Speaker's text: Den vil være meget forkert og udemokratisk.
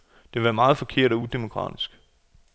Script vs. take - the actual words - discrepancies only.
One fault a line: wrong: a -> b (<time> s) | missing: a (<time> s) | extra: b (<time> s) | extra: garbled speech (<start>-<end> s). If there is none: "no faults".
wrong: Den -> Det (0.2 s)